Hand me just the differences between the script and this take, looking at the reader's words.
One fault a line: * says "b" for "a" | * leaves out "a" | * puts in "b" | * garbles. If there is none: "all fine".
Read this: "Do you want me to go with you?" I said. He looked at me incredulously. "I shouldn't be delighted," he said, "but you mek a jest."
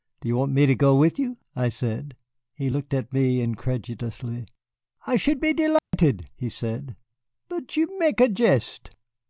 * says "should" for "shouldn't"